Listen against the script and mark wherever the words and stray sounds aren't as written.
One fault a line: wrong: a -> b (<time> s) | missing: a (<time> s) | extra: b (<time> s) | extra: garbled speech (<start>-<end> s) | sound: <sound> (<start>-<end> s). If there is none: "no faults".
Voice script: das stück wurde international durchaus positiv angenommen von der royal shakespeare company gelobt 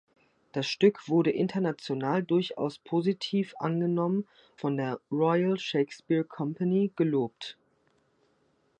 no faults